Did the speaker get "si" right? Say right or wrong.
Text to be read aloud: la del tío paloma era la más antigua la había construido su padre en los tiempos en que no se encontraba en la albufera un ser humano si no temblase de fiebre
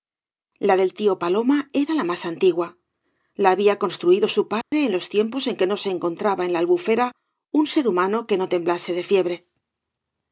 wrong